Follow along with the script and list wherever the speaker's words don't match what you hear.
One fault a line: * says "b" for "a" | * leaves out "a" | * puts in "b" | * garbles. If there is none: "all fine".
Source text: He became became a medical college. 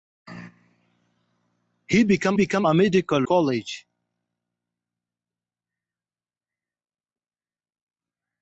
all fine